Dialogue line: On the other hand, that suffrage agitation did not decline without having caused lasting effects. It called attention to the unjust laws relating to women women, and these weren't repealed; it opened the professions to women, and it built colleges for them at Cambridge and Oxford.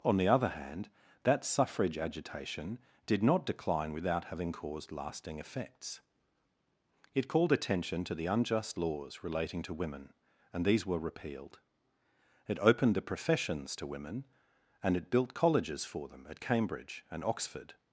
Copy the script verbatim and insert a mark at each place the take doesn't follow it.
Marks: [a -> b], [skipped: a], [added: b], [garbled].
On the other hand, that suffrage agitation did not decline without having caused lasting effects. It called attention to the unjust laws relating to women [skipped: women,] and these [weren't -> were] repealed; it opened the professions to women, and it built colleges for them at Cambridge and Oxford.